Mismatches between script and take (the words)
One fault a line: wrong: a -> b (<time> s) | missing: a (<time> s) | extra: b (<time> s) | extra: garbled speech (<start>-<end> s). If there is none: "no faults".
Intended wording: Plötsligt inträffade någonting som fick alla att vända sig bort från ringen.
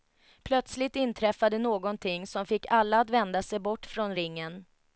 no faults